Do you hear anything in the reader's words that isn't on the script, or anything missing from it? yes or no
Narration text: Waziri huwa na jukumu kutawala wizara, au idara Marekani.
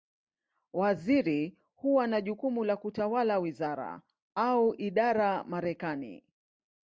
yes